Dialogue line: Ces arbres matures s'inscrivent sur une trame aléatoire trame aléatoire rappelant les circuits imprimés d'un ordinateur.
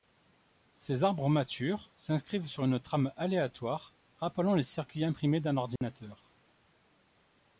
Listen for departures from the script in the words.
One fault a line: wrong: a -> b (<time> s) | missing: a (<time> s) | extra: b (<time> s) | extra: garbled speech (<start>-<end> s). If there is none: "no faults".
missing: trame aléatoire (3.9 s)